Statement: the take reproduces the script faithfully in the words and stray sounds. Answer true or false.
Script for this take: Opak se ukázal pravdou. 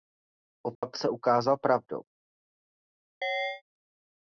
false